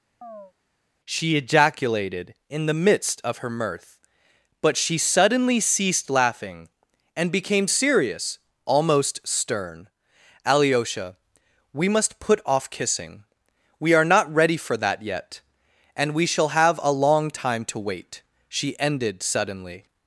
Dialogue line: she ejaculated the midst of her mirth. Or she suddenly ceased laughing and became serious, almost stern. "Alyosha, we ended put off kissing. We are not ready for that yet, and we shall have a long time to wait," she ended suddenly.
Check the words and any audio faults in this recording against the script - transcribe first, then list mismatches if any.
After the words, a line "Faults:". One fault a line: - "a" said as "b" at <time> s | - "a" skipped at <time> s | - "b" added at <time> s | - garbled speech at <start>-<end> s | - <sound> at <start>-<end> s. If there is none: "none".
she ejaculated in the midst of her mirth. But she suddenly ceased laughing and became serious, almost stern. "Alyosha, we must put off kissing. We are not ready for that yet, and we shall have a long time to wait," she ended suddenly.
Faults:
- chirp at 0.2-0.5 s
- "in" added at 2.5 s
- "Or" said as "But" at 4.6 s
- "ended" said as "must" at 11.9 s